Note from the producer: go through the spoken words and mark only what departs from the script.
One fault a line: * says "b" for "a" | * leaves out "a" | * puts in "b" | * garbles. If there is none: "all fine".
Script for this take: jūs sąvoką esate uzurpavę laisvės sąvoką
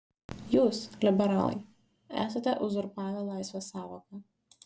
* says "liberalai" for "sąvoką"